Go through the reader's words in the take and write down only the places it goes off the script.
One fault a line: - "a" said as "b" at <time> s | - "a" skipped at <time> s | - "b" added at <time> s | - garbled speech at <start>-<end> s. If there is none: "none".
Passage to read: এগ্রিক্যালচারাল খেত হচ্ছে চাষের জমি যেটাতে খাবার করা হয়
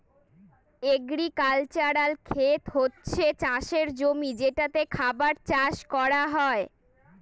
- "চাষ" added at 5.5 s